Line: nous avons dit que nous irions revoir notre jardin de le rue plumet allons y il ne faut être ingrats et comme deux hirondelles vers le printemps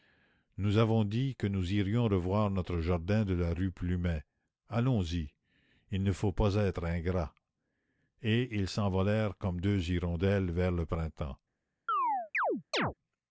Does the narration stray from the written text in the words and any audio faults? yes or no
yes